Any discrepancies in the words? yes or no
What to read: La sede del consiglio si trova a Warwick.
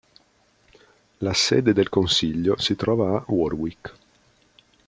no